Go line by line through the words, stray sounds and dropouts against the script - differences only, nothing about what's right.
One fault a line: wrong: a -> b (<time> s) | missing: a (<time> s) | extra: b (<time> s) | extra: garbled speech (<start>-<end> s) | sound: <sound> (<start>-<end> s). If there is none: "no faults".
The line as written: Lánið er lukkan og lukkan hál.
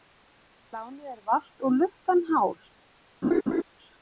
wrong: lukkan -> valt (1.3 s)
sound: laugh (3.2-3.6 s)